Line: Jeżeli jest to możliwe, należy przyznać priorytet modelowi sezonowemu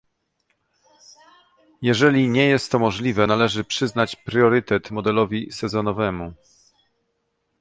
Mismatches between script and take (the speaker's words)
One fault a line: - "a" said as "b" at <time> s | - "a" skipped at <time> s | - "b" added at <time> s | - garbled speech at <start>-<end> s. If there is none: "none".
- "nie" added at 2.3 s